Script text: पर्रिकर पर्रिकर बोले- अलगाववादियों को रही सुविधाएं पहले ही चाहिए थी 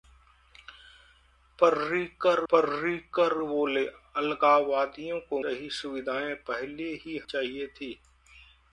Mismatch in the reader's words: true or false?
false